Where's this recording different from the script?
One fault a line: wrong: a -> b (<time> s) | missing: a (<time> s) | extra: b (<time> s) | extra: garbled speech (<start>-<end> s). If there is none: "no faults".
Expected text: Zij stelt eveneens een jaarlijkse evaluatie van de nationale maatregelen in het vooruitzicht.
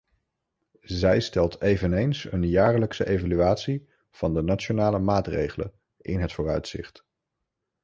no faults